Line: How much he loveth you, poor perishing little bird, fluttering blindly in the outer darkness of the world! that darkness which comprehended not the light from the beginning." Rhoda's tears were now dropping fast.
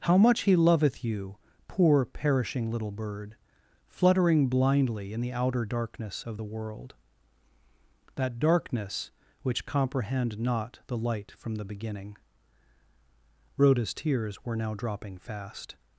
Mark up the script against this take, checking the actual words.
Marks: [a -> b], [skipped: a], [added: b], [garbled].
How much he loveth you, poor perishing little bird, fluttering blindly in the outer darkness of the world! that darkness which [comprehended -> comprehend] not the light from the beginning." Rhoda's tears were now dropping fast.